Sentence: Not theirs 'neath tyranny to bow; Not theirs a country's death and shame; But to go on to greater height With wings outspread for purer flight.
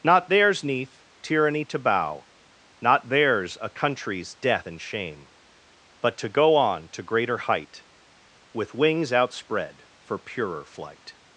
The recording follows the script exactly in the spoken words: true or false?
true